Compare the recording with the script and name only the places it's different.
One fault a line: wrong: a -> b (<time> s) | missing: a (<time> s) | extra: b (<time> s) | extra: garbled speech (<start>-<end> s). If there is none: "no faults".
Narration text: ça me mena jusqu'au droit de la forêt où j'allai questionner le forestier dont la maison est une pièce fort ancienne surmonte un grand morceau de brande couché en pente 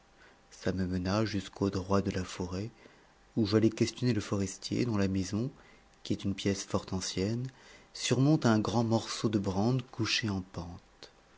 extra: qui (6.0 s)